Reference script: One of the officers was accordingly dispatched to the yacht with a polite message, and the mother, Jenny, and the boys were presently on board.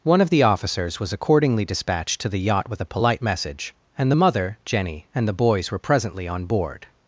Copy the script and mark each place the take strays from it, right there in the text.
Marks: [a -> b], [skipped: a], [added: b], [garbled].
One of the officers was accordingly dispatched to the yacht with a polite message, and the mother, Jenny, and the boys were presently on board.